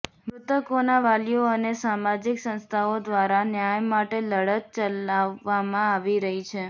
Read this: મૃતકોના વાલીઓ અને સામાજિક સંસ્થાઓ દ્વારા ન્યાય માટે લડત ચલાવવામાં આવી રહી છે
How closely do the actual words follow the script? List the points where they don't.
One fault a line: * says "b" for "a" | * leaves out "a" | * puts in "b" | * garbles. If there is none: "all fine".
all fine